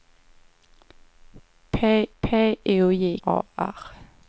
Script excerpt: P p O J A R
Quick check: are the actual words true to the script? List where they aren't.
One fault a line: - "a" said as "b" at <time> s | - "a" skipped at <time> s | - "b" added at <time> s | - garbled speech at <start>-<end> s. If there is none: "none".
none